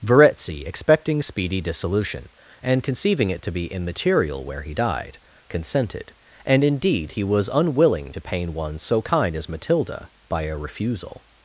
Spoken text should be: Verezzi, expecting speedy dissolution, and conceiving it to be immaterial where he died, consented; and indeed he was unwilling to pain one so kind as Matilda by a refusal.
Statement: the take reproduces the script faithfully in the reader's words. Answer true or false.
true